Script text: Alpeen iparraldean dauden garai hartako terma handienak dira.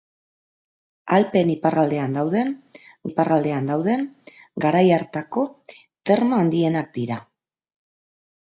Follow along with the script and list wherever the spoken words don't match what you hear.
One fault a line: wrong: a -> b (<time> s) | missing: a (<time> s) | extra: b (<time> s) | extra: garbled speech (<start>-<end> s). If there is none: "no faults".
extra: iparraldean dauden (3.1 s)